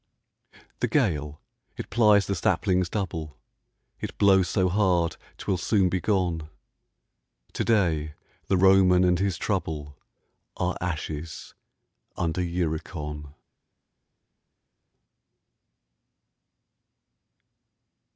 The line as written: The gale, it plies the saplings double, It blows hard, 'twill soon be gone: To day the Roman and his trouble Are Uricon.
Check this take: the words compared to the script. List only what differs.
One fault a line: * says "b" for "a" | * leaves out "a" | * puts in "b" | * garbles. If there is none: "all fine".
* puts in "so"
* puts in "ashes under"